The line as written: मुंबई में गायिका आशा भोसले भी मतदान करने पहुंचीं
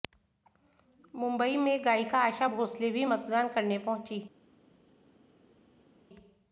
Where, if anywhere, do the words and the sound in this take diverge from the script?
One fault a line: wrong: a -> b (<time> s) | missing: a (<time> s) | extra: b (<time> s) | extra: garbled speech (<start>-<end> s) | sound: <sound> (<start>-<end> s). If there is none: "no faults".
no faults